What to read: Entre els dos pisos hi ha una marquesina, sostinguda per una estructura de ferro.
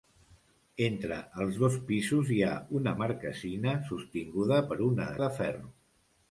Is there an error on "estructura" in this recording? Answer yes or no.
yes